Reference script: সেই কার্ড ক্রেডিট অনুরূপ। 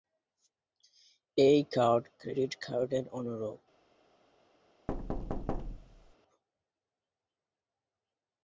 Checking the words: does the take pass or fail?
fail